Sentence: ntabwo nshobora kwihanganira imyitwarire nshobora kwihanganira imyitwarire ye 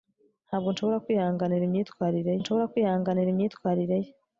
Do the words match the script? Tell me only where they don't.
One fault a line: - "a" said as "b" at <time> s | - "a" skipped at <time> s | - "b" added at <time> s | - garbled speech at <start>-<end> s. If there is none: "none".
none